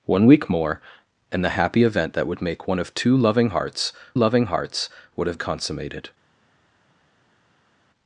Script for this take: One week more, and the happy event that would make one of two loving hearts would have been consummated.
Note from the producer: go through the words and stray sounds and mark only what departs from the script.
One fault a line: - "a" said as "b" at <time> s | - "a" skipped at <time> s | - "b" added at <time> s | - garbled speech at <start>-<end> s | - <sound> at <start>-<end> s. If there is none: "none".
- "loving hearts" added at 4.1 s
- "been" skipped at 5.4 s